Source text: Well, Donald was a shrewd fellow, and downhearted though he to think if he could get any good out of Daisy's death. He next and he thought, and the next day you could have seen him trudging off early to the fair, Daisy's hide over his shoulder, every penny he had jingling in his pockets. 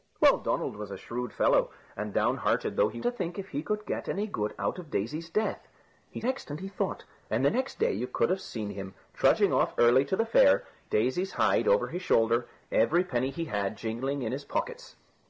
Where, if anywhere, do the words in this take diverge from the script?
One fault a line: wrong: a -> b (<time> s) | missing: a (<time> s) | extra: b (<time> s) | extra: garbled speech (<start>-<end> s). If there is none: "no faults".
no faults